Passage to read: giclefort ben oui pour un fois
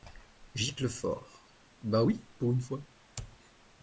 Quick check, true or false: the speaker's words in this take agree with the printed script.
false